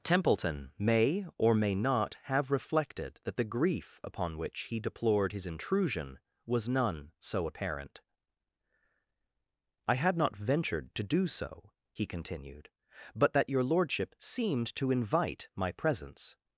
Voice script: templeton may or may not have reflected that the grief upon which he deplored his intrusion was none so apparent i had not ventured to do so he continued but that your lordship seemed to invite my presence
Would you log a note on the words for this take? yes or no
no